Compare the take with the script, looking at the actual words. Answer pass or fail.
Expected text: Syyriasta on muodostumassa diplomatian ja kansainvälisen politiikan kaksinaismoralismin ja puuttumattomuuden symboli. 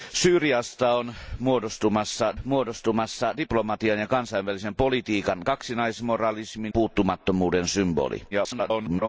fail